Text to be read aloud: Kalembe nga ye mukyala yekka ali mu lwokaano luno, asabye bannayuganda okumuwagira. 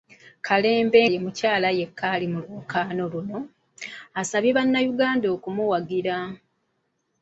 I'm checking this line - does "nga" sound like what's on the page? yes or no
no